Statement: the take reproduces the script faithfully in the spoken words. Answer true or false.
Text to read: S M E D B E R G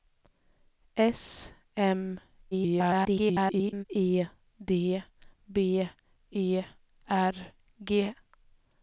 false